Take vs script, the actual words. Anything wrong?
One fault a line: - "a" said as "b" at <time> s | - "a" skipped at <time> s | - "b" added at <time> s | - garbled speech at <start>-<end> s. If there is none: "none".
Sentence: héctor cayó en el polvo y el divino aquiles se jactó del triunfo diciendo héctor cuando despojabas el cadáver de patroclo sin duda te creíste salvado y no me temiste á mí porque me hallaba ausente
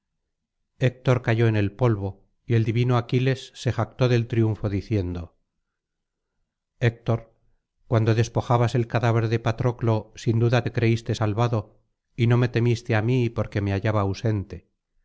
none